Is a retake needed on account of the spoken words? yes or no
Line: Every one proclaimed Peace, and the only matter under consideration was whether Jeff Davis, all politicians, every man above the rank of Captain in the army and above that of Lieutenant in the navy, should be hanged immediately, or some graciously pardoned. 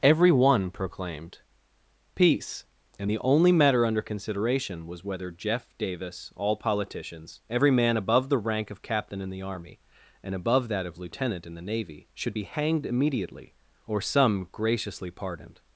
no